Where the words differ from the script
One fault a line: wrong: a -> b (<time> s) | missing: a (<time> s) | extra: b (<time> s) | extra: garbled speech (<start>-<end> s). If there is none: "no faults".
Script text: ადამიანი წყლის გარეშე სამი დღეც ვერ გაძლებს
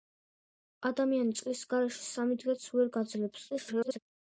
extra: garbled speech (3.5-4.0 s)